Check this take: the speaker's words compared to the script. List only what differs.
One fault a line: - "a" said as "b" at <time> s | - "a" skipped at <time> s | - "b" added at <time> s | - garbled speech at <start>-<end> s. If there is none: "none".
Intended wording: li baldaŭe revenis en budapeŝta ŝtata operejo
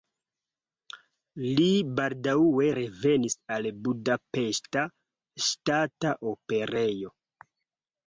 - "en" said as "al" at 3.6 s